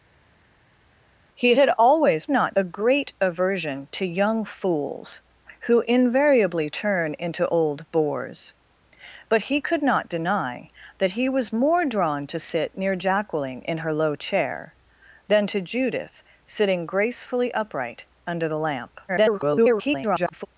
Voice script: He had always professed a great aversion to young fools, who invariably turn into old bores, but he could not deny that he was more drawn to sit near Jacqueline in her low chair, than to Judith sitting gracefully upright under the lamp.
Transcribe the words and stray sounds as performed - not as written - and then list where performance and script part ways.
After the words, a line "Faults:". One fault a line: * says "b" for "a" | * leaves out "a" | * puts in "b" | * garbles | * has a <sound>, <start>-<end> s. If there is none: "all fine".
He had always not a great aversion to young fools, who invariably turn into old bores, but he could not deny that he was more drawn to sit near Jacqueline in her low chair, than to Judith sitting gracefully upright under the lamp. [garbled]
Faults:
* says "not" for "professed"
* garbles